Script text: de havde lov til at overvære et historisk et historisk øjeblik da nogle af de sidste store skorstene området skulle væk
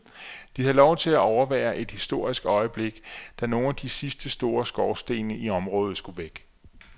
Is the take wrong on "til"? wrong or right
right